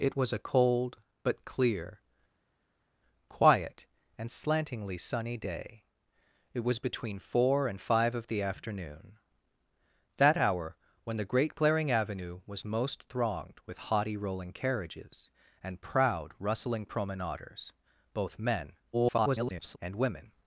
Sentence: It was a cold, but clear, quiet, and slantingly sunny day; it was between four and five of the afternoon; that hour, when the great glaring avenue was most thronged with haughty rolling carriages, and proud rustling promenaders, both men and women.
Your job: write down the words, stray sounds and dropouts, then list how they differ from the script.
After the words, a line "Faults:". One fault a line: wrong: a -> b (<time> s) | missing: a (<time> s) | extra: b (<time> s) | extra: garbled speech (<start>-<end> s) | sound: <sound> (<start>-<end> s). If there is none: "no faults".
It was a cold, but clear, quiet, and slantingly sunny day; it was between four and five of the afternoon; that hour, when the great glaring avenue was most thronged with haughty rolling carriages, and proud rustling promenaders, both men [garbled] and women.
Faults:
extra: garbled speech (18.9-19.8 s)